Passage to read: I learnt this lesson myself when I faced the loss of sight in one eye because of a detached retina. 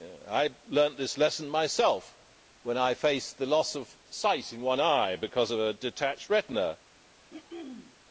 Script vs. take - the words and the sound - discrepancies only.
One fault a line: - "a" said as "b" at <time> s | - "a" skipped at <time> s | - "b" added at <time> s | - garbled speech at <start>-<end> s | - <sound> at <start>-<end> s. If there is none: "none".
- throat clearing at 7.3-8.0 s